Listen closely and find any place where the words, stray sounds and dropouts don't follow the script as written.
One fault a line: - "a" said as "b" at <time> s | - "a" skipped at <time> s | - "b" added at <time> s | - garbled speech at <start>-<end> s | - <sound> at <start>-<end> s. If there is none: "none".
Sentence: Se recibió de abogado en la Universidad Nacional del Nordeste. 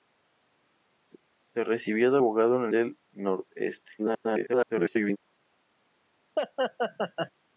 - "Universidad Nacional" skipped at 2.7 s
- garbled speech at 4.0-5.2 s
- laugh at 6.4-7.3 s